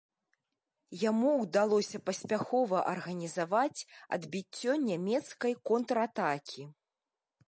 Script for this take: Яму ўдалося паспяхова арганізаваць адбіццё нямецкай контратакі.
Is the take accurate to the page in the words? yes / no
yes